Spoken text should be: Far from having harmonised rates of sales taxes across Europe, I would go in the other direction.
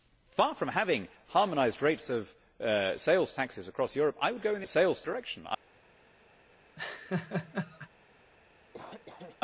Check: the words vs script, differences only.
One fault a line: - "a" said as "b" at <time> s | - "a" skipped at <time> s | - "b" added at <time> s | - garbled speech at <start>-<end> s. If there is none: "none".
- "other" said as "sales" at 4.7 s